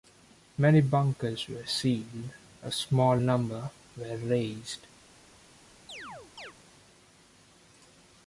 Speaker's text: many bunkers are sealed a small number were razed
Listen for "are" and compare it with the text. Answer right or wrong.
wrong